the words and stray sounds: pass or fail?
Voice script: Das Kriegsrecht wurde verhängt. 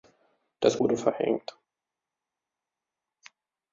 fail